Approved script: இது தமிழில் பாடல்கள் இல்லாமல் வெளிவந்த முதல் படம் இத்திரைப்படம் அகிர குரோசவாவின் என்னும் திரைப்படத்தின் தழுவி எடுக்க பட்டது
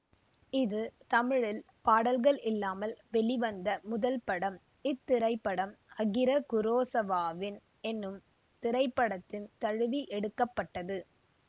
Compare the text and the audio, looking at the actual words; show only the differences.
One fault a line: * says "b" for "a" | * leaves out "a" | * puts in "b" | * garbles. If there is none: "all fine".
all fine